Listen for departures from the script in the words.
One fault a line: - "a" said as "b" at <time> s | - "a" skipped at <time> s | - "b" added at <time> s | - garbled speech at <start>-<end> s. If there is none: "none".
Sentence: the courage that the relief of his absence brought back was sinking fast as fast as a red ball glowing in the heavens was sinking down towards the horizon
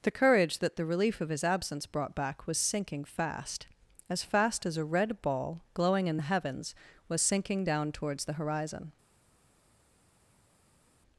none